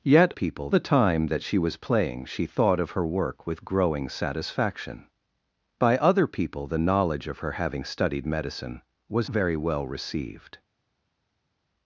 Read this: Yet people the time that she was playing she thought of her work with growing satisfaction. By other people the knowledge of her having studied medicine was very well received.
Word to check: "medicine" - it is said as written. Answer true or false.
true